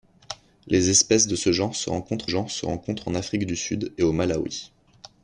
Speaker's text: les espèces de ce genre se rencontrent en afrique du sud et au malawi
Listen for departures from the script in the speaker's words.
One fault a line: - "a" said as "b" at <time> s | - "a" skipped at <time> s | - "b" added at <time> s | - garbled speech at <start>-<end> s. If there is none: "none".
- "genre se rencontrent" added at 2.3 s